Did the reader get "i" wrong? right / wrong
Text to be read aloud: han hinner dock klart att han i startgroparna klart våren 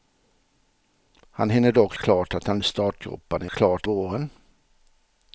right